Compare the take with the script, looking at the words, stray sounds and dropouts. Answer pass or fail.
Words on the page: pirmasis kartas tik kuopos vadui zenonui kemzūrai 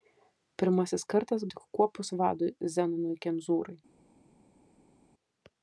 pass